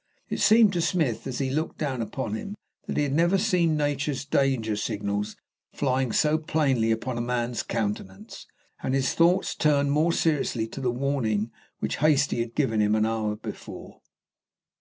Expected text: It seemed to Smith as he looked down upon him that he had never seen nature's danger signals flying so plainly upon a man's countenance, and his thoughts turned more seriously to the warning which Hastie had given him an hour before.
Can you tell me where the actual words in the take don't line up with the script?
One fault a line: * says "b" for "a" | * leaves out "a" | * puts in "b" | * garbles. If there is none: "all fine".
all fine